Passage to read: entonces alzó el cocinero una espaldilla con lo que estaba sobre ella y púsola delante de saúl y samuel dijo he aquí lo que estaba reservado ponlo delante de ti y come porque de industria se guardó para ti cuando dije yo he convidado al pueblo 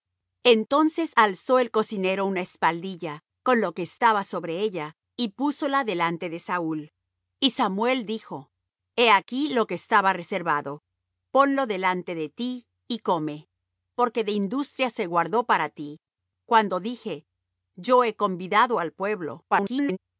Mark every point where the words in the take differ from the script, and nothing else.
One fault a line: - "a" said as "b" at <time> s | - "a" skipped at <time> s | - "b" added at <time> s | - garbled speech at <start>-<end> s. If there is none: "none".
- garbled speech at 19.5-20.0 s